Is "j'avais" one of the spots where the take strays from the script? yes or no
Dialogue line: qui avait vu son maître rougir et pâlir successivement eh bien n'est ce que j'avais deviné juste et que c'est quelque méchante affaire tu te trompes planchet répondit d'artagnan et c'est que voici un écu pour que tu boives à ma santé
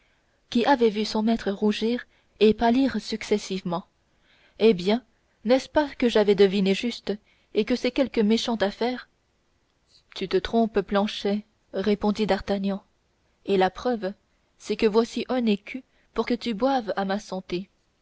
no